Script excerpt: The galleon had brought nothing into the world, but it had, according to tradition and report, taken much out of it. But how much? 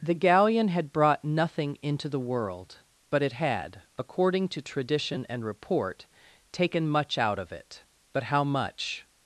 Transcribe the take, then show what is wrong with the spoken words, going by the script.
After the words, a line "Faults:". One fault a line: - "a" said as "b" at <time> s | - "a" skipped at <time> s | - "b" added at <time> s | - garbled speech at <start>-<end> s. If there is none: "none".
The galleon had brought nothing into the world, but it had, according to tradition and report, taken much out of it. But how much?
Faults:
none